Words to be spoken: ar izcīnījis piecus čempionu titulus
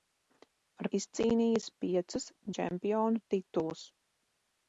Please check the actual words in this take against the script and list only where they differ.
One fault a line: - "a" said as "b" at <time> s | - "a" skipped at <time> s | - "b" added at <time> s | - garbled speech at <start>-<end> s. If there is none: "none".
none